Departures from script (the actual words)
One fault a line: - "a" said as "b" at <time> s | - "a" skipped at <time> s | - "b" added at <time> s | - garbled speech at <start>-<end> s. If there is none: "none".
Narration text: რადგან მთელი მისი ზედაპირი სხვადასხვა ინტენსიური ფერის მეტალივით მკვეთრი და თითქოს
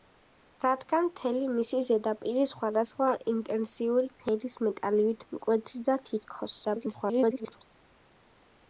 - garbled speech at 6.6-7.6 s